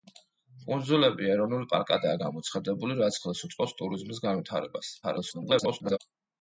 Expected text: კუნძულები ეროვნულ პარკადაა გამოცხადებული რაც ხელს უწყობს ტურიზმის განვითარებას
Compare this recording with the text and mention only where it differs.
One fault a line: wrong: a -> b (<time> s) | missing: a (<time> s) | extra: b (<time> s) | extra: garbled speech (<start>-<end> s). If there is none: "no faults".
extra: garbled speech (5.0-6.0 s)